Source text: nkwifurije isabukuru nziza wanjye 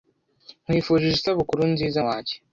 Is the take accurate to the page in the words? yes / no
yes